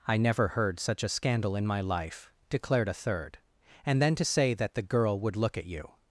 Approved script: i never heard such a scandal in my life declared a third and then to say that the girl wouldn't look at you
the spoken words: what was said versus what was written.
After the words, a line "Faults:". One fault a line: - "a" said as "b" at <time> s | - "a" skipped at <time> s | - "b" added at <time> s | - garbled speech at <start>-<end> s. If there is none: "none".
i never heard such a scandal in my life declared a third and then to say that the girl would look at you
Faults:
- "wouldn't" said as "would" at 5.2 s